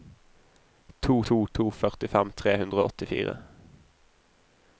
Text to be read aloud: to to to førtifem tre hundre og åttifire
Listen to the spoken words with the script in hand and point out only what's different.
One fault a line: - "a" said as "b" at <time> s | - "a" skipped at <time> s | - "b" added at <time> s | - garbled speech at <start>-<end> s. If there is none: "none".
none